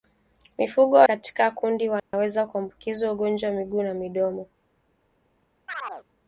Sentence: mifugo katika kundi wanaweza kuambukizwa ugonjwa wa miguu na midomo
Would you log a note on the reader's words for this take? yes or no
no